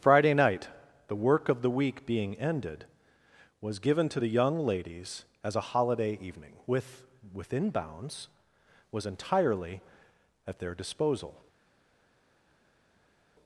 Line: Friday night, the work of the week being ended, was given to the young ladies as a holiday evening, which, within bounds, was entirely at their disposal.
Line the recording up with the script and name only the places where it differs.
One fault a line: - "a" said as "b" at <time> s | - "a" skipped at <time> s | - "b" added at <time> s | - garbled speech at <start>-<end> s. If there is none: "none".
- "which" said as "with" at 6.7 s